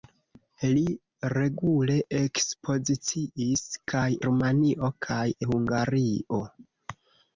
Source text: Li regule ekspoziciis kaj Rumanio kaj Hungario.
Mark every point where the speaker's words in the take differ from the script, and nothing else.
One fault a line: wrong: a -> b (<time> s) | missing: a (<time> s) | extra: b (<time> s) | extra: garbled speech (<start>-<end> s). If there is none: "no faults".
no faults